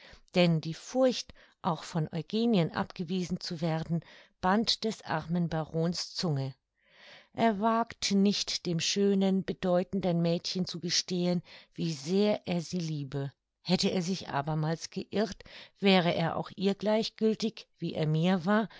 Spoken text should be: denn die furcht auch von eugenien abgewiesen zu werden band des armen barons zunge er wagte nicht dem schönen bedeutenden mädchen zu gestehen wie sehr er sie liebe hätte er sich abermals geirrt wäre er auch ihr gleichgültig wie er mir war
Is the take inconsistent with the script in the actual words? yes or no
no